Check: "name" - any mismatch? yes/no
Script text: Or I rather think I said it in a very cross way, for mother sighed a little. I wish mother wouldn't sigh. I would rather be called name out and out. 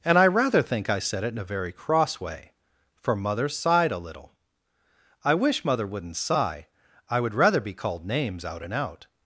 yes